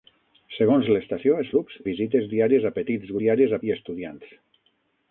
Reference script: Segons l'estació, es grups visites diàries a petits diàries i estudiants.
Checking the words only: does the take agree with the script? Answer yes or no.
yes